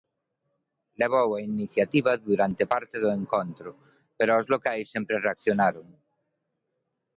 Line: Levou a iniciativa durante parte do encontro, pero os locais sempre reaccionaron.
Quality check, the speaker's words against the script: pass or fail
pass